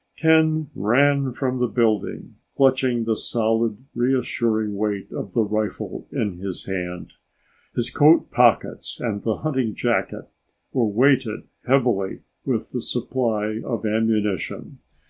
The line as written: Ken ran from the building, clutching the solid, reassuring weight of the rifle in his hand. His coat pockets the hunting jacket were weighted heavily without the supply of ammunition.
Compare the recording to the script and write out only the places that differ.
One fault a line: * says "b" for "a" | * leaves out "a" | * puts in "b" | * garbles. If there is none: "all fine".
* puts in "and"
* says "with" for "without"